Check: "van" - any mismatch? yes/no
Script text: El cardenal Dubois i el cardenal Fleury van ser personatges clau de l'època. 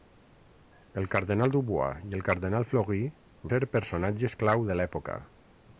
yes